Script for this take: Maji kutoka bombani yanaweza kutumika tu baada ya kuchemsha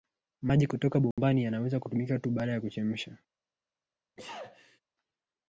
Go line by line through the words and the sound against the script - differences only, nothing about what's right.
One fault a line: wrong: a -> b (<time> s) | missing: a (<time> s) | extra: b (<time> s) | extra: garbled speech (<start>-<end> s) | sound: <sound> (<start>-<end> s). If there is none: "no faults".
sound: dropout (1.1-1.2 s)
sound: sneeze (4.2-4.8 s)